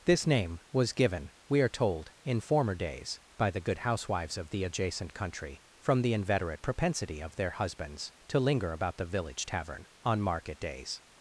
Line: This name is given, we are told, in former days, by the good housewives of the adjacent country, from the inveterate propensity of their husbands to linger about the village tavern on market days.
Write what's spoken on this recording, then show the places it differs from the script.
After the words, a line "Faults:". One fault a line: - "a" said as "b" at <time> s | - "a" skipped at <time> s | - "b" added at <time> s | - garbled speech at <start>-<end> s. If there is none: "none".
This name was given, we are told, in former days, by the good housewives of the adjacent country, from the inveterate propensity of their husbands to linger about the village tavern on market days.
Faults:
- "is" said as "was" at 0.7 s